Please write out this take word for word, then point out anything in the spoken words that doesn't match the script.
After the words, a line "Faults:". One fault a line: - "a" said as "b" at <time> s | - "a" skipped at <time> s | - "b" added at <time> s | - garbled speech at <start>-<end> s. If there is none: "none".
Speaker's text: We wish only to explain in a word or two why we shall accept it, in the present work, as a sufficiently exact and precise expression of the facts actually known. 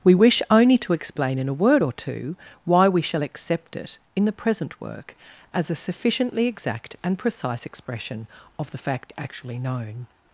We wish only to explain in a word or two why we shall accept it, in the present work, as a sufficiently exact and precise expression of the fact actually known.
Faults:
- "facts" said as "fact" at 8.8 s